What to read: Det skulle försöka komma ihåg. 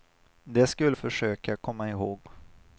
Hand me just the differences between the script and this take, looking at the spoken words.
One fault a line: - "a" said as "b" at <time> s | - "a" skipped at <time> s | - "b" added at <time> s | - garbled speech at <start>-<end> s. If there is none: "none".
none